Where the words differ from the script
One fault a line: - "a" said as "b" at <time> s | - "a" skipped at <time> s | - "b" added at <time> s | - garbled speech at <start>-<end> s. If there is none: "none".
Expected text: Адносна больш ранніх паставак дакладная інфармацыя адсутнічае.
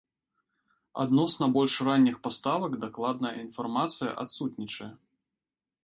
none